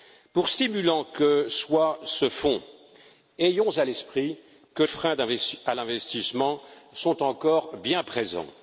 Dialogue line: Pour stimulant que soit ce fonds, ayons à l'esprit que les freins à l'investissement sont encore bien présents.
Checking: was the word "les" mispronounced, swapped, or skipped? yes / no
yes